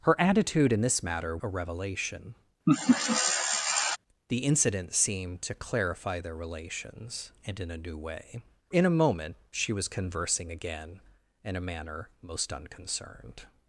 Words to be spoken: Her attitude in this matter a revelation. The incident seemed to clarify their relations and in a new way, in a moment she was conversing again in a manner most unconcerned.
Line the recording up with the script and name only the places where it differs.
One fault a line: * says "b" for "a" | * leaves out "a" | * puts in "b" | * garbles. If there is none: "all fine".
all fine